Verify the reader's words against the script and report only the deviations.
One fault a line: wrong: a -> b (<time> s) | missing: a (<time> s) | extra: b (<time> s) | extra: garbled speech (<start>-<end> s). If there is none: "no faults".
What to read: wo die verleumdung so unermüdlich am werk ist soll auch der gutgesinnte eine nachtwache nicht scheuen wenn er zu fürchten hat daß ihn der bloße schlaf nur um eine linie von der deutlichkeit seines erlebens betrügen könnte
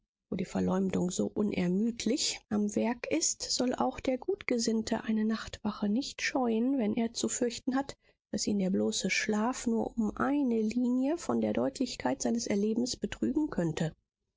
no faults